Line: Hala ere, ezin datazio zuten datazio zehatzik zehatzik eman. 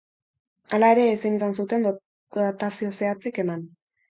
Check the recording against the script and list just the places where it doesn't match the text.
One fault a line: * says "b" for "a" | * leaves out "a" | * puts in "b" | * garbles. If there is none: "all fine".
* says "izan" for "datazio"
* leaves out "zehatzik"